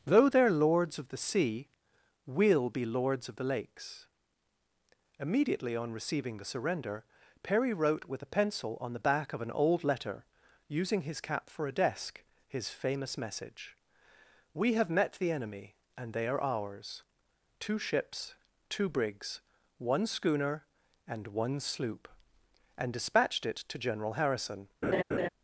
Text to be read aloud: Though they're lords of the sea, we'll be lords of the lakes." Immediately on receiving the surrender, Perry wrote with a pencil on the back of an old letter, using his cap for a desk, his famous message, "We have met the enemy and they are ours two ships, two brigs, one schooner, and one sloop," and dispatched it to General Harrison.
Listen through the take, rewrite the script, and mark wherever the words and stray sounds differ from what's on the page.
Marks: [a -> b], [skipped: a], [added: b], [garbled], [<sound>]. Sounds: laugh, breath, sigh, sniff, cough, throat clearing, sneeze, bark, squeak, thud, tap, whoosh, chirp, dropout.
Though they're lords of the sea, we'll be lords of the lakes." Immediately on receiving the surrender, Perry wrote with a pencil on the back of an old letter, using his cap for a desk, his famous message, "We have met the enemy and they are ours two ships, two brigs, one schooner, and one sloop," and dispatched it to General Harrison. [laugh]